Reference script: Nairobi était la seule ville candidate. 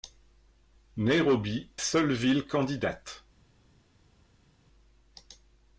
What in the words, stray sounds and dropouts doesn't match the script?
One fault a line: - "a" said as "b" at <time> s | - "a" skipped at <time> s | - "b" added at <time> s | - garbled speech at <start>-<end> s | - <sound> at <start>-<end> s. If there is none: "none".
- "était la" skipped at 1.7 s